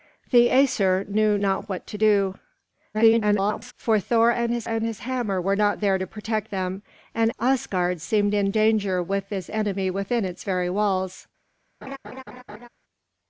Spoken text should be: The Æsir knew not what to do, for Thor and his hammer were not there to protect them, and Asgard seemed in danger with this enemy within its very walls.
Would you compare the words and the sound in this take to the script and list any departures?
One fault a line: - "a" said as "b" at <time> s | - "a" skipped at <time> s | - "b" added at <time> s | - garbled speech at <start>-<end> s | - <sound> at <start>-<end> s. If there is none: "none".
- garbled speech at 2.9-3.7 s
- "and his" added at 4.6 s
- laugh at 11.8-12.7 s